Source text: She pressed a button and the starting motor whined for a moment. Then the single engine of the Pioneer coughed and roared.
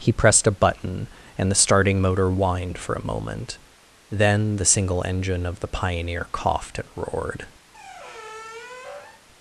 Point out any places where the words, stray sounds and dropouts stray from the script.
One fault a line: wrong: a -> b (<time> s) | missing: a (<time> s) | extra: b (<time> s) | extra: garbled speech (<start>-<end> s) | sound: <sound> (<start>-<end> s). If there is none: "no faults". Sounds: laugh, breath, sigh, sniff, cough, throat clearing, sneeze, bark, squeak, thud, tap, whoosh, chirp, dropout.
wrong: She -> He (0.0 s)
sound: squeak (7.7-9.2 s)